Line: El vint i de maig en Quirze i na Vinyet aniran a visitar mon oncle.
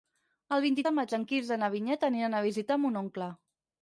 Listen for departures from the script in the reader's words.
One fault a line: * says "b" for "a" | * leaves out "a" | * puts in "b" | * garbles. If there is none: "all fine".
all fine